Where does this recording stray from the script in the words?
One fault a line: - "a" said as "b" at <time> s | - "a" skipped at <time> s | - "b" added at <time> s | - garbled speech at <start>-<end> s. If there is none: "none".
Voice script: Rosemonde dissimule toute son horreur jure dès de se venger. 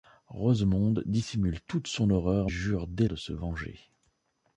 none